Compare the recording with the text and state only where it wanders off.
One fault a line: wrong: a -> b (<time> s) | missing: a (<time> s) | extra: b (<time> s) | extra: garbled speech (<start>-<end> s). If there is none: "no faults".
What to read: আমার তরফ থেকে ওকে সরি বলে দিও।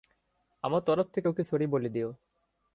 no faults